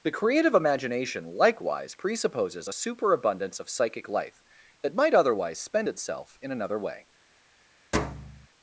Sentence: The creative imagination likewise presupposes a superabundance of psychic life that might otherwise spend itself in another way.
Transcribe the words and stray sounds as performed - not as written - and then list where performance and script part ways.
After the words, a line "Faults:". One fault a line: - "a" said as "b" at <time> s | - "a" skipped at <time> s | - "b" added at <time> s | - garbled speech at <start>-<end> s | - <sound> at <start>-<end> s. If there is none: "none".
The creative imagination likewise presupposes a superabundance of psychic life that might otherwise spend itself in another way.
Faults:
- thud at 7.9-8.5 s